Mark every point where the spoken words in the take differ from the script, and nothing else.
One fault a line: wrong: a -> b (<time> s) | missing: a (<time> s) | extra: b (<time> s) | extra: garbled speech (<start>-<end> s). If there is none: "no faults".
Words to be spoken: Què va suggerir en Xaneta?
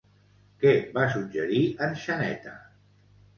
no faults